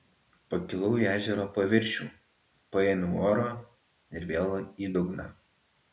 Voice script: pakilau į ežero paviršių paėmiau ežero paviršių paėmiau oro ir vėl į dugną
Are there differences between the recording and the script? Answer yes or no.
yes